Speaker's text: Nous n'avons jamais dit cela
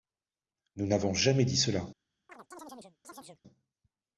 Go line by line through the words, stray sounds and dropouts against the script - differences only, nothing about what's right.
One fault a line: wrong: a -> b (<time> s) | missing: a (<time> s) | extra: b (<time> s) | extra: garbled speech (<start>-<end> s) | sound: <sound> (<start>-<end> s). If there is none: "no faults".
sound: chirp (2.3-3.4 s)